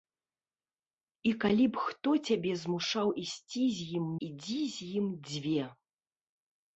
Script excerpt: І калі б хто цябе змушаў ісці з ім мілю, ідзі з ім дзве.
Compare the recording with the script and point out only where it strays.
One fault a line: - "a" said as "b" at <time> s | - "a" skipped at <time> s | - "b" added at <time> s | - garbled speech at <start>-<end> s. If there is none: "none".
- "мілю" skipped at 4.1 s